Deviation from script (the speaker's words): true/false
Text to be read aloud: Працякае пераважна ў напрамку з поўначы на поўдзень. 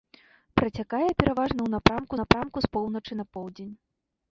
true